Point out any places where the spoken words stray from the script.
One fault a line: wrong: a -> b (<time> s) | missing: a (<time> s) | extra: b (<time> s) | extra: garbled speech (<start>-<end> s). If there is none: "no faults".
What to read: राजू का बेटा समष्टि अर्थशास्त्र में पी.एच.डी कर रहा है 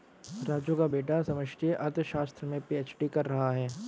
no faults